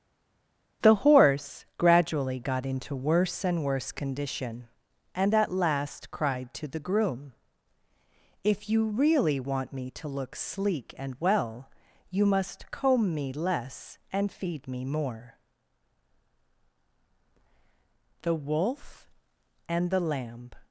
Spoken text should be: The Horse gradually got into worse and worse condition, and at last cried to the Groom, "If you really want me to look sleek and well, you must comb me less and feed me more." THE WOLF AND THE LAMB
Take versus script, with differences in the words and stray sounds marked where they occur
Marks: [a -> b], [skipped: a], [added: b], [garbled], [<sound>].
The Horse gradually got into worse and worse condition, and at last cried to the Groom, "If you really want me to look sleek and well, you must comb me less and feed me more." THE WOLF AND THE LAMB